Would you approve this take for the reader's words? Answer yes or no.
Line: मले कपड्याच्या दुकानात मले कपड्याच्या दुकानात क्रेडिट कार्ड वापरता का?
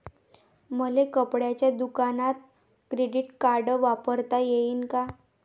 no